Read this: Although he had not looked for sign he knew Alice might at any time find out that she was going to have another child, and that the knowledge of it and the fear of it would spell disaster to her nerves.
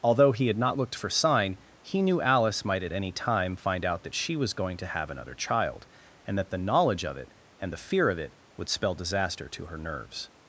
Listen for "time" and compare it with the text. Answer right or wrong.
right